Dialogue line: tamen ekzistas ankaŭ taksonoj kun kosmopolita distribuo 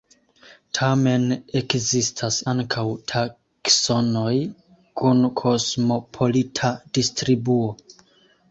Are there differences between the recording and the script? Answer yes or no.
no